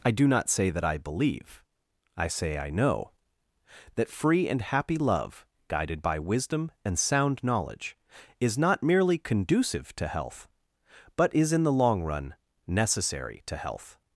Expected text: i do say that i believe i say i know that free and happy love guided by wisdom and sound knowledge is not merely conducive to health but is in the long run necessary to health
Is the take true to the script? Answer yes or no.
no